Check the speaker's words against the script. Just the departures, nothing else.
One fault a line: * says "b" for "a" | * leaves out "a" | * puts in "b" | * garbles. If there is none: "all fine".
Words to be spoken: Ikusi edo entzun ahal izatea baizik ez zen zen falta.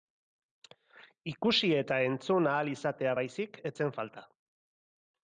* says "eta" for "edo"
* leaves out "zen"